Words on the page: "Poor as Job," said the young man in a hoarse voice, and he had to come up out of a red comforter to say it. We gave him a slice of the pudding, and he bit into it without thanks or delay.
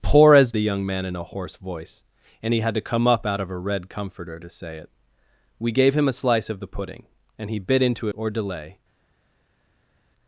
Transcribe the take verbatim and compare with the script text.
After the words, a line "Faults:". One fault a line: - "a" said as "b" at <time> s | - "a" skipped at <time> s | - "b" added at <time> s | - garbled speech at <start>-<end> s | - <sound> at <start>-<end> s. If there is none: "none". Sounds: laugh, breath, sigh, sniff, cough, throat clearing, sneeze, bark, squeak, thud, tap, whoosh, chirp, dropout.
"Poor as The young man in a hoarse voice, and he had to come up out of a red comforter to say it. We gave him a slice of the pudding, and he bit into or delay.
Faults:
- "Job said" skipped at 0.5 s
- "it without thanks" skipped at 8.1 s